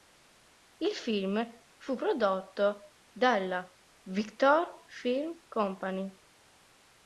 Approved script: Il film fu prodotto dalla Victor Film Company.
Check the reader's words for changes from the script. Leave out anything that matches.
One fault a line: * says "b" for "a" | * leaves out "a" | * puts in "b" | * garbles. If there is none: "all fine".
all fine